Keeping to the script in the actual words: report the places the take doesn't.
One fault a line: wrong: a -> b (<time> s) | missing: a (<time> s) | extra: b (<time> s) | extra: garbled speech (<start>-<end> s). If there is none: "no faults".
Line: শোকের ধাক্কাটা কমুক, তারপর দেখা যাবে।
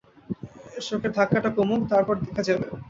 no faults